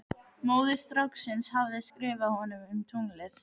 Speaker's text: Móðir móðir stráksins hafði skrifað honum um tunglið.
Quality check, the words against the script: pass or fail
fail